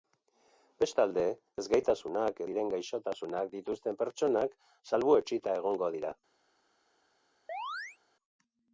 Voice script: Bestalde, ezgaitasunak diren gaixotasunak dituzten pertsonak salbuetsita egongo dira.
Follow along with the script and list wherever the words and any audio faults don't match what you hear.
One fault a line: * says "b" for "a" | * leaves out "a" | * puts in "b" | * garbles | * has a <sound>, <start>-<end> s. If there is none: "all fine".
* has a chirp, 7.5-8.0 s